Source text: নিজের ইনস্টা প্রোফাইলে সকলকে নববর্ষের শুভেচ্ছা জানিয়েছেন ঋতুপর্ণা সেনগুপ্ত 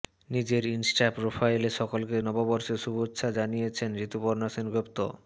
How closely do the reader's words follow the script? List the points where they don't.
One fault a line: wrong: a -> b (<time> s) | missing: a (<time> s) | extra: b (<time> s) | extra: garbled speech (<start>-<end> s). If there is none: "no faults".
no faults